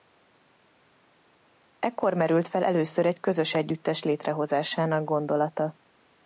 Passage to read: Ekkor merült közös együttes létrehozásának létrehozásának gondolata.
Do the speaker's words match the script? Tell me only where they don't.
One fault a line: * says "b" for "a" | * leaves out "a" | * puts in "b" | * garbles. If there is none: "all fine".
* puts in "fel először egy"
* leaves out "létrehozásának"